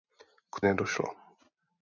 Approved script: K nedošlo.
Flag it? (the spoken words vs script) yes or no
no